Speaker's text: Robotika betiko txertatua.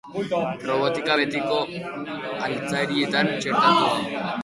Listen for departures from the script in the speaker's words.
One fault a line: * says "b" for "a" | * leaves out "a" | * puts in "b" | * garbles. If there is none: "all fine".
* puts in "altzarietan"